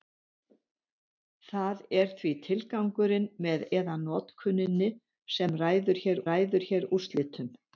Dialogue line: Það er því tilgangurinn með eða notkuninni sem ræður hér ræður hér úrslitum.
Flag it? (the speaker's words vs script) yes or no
no